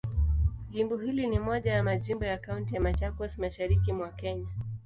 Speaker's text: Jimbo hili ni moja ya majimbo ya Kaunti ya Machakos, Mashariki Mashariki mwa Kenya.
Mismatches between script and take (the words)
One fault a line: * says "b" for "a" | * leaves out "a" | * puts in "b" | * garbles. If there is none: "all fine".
* leaves out "Mashariki"